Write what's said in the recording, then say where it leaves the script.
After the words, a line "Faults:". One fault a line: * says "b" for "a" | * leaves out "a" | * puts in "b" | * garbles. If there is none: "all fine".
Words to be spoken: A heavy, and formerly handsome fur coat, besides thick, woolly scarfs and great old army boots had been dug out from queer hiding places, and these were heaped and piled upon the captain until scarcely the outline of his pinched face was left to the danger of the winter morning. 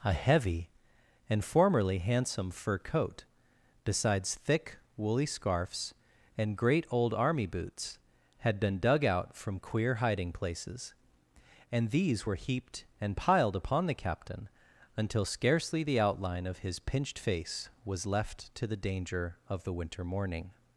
A heavy, and formerly handsome fur coat, besides thick, woolly scarfs and great old army boots had been dug out from queer hiding places, and these were heaped and piled upon the captain until scarcely the outline of his pinched face was left to the danger of the winter morning.
Faults:
all fine